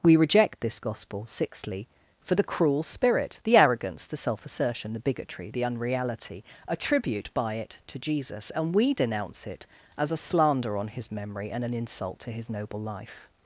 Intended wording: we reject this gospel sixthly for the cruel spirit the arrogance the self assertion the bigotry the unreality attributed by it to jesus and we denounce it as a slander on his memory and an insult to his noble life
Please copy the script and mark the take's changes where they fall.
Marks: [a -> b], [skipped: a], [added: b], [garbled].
we reject this gospel sixthly for the cruel spirit the arrogance the self assertion the bigotry the unreality [attributed -> attribute] by it to jesus and we denounce it as a slander on his memory and an insult to his noble life